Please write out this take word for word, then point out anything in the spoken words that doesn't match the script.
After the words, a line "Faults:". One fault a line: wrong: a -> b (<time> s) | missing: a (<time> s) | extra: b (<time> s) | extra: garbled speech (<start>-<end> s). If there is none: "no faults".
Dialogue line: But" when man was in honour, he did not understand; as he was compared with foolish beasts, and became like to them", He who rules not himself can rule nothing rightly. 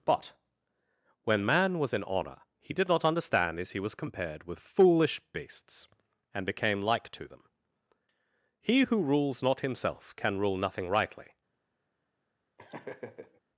But" when man was in honour, he did not understand; as he was compared with foolish beasts, and became like to them", He who rules not himself can rule nothing rightly.
Faults:
no faults